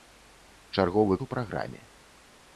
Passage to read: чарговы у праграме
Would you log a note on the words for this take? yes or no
no